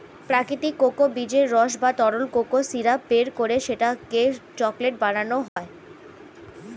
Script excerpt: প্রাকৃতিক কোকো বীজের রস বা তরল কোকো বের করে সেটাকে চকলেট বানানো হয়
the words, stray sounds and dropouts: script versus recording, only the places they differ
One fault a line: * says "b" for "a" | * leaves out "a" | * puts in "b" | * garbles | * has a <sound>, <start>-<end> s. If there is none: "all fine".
* puts in "সিরাপ"
* has a dropout, 5.5-5.6 s